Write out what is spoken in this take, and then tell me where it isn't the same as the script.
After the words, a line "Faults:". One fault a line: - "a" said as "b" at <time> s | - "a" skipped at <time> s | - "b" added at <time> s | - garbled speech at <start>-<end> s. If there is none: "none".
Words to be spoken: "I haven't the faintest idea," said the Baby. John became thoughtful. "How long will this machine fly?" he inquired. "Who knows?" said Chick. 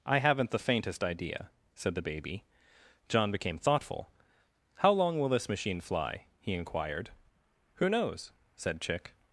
"I haven't the faintest idea," said the Baby. John became thoughtful. "How long will this machine fly?" he inquired. "Who knows?" said Chick.
Faults:
none